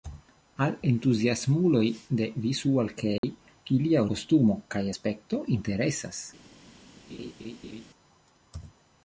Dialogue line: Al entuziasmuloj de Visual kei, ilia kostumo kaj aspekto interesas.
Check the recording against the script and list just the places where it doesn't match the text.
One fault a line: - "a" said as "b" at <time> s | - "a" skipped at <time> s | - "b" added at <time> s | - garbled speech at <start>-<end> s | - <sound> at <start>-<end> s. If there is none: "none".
- dropout at 3.2-3.2 s
- laugh at 7.1-7.9 s